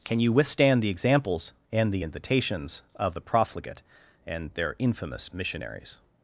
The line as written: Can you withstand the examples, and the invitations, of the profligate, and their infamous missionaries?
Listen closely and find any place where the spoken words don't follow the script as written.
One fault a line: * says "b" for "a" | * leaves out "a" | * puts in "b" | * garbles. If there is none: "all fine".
all fine